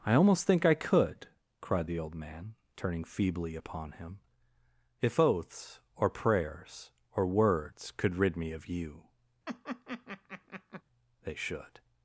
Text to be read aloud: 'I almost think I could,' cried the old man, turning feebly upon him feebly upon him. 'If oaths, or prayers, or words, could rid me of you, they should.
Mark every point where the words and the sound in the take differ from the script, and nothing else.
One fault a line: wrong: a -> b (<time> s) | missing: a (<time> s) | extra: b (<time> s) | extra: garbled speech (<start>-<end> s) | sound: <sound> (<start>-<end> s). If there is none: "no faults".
missing: feebly upon him (4.2 s)
sound: laugh (9.5-10.8 s)